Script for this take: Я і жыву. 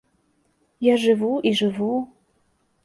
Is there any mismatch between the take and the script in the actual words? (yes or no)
yes